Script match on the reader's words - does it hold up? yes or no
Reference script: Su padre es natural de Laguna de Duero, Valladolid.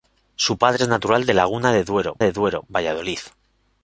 no